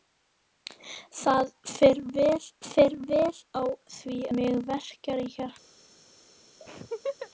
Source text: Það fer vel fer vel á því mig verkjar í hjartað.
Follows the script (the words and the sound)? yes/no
no